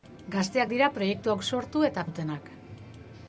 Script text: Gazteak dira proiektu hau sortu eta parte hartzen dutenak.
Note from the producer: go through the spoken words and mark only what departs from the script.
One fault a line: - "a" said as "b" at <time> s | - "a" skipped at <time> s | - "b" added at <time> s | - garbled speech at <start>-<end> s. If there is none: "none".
- "parte hartzen" skipped at 2.1 s